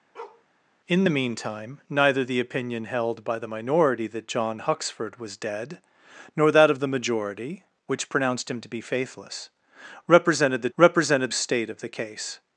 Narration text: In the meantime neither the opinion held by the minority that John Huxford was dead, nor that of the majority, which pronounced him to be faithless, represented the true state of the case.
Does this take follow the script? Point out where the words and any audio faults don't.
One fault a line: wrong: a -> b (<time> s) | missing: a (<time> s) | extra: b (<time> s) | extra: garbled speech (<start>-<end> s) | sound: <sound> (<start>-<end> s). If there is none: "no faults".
sound: bark (0.1-0.4 s)
wrong: true -> represented (10.8 s)